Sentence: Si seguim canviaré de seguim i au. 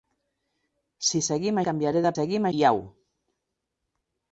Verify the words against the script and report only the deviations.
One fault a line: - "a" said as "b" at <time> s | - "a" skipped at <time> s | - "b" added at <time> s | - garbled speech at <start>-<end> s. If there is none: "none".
none